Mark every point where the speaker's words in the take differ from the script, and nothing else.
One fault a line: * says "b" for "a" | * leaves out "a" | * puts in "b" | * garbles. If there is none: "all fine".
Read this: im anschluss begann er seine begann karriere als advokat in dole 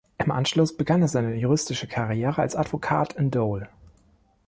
* says "juristische" for "begann"